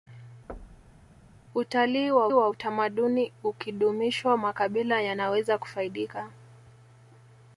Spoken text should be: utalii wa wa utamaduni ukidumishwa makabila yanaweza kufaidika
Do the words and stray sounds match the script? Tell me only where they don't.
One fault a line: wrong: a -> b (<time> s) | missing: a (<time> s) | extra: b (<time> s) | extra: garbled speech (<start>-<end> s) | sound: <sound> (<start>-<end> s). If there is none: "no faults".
sound: thud (0.5-1.1 s)